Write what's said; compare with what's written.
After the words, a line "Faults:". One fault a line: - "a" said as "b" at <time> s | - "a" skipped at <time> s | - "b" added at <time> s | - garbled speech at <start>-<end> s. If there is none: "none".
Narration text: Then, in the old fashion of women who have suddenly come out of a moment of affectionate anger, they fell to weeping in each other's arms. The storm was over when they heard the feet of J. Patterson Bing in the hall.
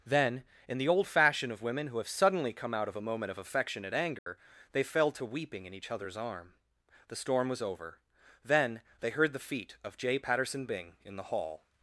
Then, in the old fashion of women who have suddenly come out of a moment of affectionate anger, they fell to weeping in each other's arm. The storm was over then they heard the feet of J. Patterson Bing in the hall.
Faults:
- "arms" said as "arm" at 6.2 s
- "when" said as "then" at 8.4 s